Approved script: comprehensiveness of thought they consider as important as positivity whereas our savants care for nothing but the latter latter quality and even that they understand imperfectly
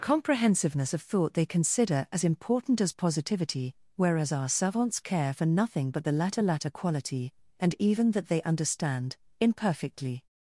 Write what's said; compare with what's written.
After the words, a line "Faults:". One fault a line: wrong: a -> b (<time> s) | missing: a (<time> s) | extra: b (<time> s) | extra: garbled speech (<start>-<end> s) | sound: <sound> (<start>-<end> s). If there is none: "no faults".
comprehensiveness of thought they consider as important as positivity whereas our savants care for nothing but the latter latter quality and even that they understand imperfectly
Faults:
no faults